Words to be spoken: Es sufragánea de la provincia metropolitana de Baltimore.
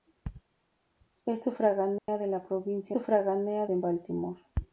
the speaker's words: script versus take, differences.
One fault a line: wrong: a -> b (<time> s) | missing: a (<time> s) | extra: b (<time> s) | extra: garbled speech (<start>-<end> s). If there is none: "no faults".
wrong: metropolitana -> sufragánea (2.9 s)